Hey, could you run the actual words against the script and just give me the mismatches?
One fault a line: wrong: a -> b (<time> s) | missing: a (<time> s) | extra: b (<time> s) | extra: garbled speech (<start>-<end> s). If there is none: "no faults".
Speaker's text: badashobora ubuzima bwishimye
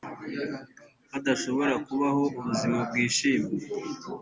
extra: kubaho (1.9 s)